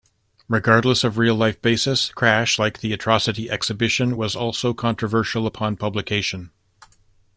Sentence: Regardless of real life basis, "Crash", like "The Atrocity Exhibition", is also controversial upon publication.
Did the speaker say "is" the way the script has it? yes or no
no